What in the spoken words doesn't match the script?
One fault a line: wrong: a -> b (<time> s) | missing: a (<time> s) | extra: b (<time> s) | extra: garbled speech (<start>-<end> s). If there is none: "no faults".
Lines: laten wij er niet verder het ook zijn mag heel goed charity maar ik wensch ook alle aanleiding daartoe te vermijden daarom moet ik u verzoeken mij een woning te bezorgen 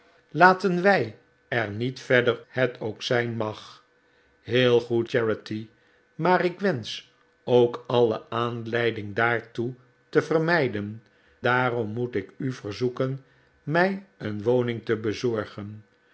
no faults